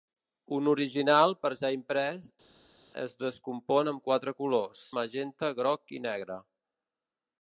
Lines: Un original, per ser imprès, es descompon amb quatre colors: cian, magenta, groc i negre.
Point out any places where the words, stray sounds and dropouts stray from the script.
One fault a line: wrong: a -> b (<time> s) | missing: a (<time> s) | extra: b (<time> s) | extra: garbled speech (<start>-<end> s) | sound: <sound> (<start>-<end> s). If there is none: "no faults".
missing: cian (4.8 s)